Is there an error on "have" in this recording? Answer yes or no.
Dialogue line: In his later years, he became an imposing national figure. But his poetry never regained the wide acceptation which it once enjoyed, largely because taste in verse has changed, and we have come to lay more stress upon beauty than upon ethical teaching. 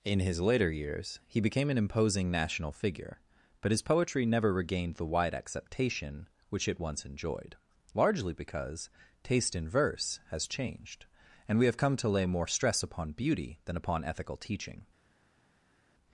no